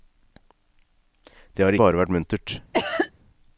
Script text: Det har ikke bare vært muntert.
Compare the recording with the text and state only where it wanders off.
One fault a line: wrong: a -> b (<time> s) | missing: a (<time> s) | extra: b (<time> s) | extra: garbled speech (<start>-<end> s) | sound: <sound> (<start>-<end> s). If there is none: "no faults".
missing: ikke (1.8 s)
sound: cough (2.7-3.1 s)